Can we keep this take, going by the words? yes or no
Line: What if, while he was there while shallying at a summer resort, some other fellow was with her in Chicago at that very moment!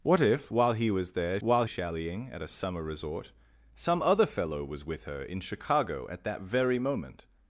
yes